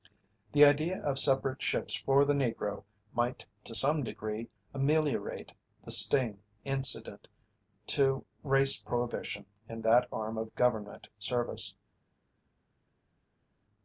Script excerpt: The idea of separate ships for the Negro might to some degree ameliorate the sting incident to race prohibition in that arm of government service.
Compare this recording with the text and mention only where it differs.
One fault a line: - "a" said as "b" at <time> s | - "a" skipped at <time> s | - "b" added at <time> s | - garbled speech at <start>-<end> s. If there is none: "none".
none